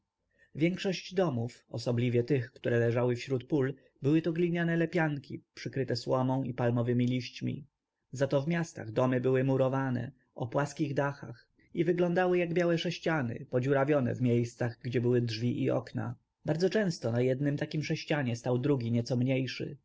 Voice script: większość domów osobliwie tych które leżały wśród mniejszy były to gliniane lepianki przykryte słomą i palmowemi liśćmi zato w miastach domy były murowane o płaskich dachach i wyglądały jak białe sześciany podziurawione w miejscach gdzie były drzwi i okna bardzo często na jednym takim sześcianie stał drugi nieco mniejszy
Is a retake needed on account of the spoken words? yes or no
yes